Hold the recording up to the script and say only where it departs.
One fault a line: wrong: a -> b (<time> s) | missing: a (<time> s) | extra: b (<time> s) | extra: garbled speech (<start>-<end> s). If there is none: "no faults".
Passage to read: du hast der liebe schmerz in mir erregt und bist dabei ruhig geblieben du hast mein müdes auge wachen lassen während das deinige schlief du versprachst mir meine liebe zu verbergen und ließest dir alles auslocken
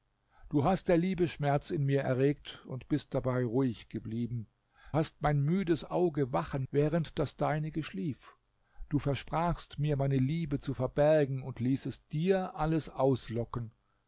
missing: du (4.5 s)
missing: lassen (6.7 s)